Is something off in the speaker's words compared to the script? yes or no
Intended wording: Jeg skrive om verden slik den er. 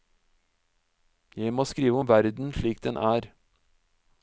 yes